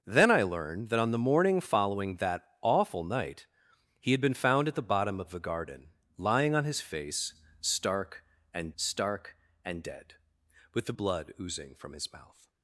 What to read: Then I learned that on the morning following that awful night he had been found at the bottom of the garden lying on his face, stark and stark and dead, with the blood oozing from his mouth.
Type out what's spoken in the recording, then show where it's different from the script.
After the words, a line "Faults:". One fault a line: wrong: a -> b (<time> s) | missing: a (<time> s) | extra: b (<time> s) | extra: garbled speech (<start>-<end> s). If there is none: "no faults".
Then I learned that on the morning following that awful night he had been found at the bottom of the garden lying on his face, stark and stark and dead, with the blood oozing from his mouth.
Faults:
no faults